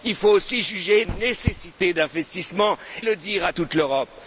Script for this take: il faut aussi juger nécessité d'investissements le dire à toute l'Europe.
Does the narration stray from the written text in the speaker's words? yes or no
no